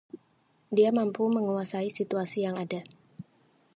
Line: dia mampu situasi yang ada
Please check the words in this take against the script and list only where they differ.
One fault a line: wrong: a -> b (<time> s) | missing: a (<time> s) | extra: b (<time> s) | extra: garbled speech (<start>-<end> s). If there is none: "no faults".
extra: menguasai (1.3 s)